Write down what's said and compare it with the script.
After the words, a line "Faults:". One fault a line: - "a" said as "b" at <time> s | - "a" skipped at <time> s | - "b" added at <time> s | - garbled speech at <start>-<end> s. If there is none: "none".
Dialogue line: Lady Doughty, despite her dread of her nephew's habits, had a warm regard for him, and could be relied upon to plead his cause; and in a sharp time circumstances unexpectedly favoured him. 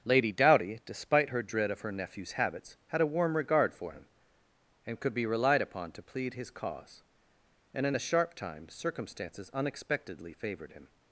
Lady Doughty, despite her dread of her nephew's habits, had a warm regard for him, and could be relied upon to plead his cause; and in a sharp time circumstances unexpectedly favoured him.
Faults:
none